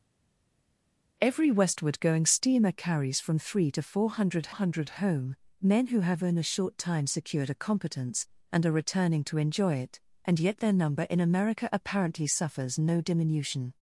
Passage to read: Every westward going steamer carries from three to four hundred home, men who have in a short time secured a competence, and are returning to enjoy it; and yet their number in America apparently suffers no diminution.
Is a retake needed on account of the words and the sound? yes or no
yes